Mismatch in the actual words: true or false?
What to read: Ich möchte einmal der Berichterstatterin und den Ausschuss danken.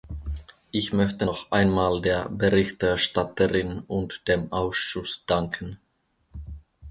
true